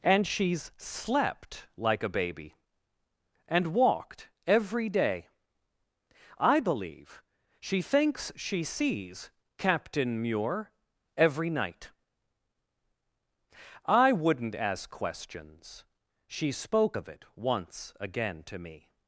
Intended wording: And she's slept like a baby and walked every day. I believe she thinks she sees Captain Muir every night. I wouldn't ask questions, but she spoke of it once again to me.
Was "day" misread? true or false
false